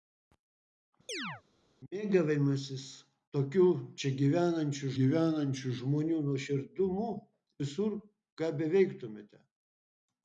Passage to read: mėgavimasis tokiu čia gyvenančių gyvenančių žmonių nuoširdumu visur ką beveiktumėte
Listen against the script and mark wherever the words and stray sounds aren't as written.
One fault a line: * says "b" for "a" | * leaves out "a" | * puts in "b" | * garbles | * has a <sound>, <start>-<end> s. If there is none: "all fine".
* has a chirp, 1.1-1.4 s